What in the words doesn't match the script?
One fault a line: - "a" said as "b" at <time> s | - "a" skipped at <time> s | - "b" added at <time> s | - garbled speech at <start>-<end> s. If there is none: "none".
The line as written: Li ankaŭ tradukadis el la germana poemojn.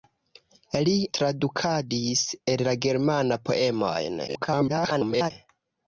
- "ankaŭ" skipped at 0.9 s
- garbled speech at 4.3-5.3 s